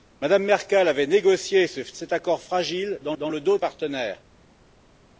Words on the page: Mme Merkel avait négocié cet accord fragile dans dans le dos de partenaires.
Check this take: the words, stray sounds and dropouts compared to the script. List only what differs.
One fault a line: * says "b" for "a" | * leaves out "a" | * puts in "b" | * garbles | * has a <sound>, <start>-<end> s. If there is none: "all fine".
all fine